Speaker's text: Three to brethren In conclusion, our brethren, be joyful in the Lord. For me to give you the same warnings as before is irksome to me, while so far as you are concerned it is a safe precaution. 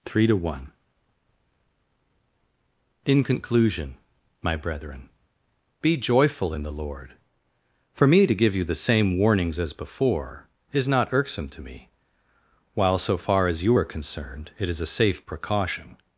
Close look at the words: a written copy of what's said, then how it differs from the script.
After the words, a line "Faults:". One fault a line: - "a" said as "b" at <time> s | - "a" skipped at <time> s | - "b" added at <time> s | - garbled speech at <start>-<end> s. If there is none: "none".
Three to one In conclusion, my brethren, be joyful in the Lord. For me to give you the same warnings as before is not irksome to me, while so far as you are concerned it is a safe precaution.
Faults:
- "brethren" said as "one" at 0.3 s
- "our" said as "my" at 4.4 s
- "not" added at 10.9 s